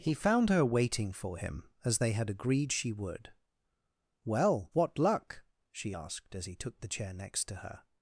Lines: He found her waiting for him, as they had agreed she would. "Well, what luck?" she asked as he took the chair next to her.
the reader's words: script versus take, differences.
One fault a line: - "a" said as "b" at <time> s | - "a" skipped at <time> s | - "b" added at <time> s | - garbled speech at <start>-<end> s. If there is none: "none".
none